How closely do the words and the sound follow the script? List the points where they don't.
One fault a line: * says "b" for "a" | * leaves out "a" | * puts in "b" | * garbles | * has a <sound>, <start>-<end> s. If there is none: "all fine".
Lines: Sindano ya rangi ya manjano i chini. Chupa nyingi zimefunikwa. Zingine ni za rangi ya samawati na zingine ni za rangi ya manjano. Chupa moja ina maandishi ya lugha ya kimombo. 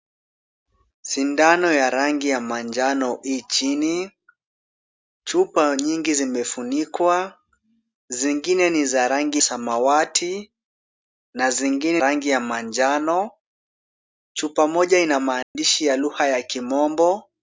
* leaves out "ya"
* leaves out "ni za"
* has a dropout, 15.4-15.6 s